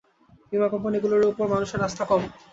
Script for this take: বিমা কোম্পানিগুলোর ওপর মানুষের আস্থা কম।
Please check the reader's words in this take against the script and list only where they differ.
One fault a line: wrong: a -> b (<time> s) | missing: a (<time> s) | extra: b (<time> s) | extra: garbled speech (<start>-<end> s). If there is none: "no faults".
no faults